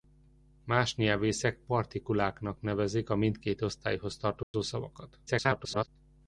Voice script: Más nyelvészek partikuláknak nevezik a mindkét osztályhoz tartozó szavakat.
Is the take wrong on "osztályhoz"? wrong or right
right